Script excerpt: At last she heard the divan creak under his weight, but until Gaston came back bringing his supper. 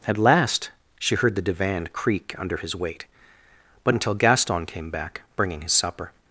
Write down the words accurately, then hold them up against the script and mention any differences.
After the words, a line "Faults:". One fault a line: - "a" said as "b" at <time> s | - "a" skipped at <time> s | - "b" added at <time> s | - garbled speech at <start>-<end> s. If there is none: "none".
At last she heard the divan creak under his weight, but until Gaston came back bringing his supper.
Faults:
none